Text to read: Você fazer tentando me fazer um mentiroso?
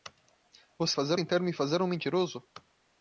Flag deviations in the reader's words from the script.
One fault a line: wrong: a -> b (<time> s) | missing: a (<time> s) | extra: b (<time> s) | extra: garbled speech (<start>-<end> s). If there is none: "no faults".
no faults